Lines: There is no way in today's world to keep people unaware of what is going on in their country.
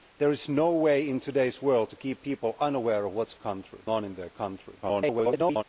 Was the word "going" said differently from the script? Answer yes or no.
yes